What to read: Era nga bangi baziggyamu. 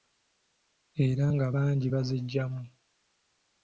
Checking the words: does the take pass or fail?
pass